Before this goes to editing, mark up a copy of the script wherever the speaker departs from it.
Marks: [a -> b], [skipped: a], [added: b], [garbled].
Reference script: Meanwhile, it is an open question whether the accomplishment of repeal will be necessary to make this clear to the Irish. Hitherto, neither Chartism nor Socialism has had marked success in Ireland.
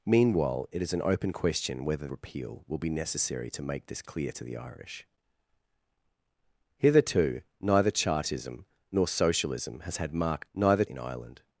Meanwhile, it is an open question whether [skipped: the accomplishment of] repeal will be necessary to make this clear to the Irish. Hitherto, neither Chartism nor Socialism has had marked [success -> neither] in Ireland.